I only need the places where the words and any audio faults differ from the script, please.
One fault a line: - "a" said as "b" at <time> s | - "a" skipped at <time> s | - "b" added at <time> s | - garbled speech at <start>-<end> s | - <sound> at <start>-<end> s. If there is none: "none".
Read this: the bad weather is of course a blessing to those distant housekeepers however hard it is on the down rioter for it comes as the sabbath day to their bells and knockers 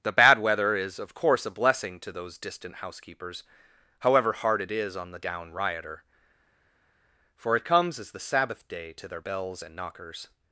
none